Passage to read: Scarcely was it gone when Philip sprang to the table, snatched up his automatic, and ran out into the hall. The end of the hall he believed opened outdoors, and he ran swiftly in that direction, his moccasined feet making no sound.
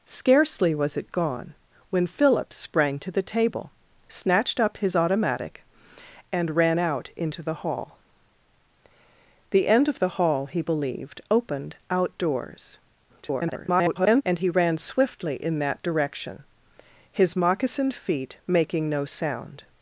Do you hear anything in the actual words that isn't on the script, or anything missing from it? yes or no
yes